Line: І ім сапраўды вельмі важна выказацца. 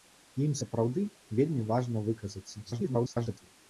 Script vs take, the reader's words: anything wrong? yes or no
yes